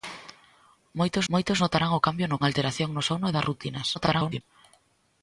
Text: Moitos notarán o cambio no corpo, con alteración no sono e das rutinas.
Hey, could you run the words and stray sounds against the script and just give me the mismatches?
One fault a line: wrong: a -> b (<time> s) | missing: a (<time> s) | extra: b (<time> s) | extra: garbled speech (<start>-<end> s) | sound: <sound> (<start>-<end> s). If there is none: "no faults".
extra: moitos (1.3 s)
missing: corpo con (2.4 s)
extra: garbled speech (3.9-4.4 s)